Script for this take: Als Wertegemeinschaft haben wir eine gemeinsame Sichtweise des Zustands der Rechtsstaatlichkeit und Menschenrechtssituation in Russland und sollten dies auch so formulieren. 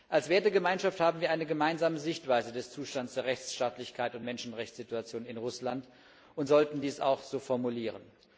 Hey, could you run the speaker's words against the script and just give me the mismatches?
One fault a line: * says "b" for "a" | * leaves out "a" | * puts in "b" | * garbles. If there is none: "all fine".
all fine